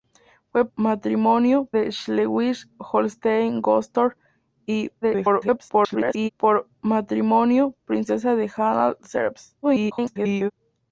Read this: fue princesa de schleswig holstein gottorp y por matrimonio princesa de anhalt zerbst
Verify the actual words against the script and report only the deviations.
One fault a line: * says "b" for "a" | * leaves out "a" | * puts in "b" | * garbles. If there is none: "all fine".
* says "matrimonio" for "princesa"
* garbles
* garbles